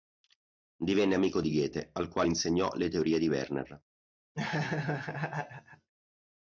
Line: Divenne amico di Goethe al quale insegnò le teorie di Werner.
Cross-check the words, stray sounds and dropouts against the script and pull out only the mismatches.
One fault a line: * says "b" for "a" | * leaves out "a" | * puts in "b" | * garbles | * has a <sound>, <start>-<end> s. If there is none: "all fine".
* has a laugh, 4.3-5.9 s